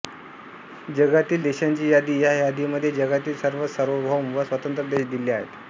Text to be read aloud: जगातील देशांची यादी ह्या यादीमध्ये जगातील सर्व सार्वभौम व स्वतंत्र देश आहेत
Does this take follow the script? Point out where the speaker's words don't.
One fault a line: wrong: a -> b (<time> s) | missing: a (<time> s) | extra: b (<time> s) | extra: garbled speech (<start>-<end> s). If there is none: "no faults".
extra: दिले (5.1 s)